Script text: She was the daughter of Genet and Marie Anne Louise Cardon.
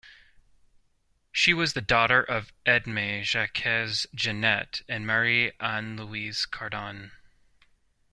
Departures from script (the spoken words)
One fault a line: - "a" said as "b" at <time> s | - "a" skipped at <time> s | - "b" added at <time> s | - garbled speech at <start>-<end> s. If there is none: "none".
- "Edme Jacques" added at 2.6 s